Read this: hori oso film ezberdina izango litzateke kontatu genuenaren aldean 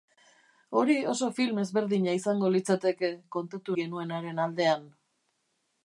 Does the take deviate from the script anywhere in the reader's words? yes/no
no